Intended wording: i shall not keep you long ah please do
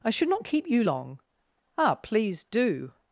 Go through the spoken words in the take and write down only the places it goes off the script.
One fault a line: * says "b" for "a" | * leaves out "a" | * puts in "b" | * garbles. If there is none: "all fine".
* says "should" for "shall"